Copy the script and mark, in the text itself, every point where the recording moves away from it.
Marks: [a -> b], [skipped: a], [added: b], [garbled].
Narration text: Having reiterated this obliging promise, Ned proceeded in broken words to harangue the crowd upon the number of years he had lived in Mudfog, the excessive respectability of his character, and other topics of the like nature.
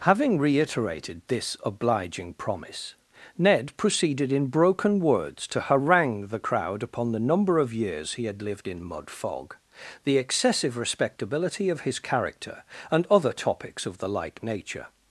Having reiterated this obliging promise, Ned proceeded in broken words to harangue the crowd upon the number of years he had lived in Mudfog, the excessive respectability of his character, and other topics of the like nature.